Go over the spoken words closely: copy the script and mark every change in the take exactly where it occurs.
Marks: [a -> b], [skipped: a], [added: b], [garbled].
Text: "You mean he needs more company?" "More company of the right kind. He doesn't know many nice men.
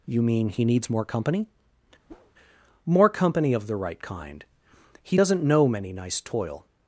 "You mean he needs more company?" "More company of the right kind. He doesn't know many nice [men. -> toil]